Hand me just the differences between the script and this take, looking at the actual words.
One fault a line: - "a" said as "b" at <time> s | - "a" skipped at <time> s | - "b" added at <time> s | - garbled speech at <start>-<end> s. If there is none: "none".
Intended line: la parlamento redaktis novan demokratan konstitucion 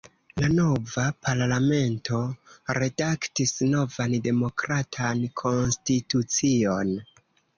- "nova" added at 0.5 s